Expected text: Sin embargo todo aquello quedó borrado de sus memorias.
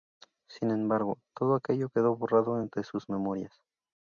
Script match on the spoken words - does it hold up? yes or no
yes